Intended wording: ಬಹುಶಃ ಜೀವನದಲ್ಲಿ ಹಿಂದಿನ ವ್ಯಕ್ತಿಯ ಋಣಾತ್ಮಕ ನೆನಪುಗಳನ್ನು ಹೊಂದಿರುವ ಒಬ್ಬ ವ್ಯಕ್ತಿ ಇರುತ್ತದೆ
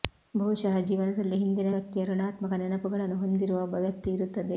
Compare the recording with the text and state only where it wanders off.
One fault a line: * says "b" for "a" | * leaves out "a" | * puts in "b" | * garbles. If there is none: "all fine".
all fine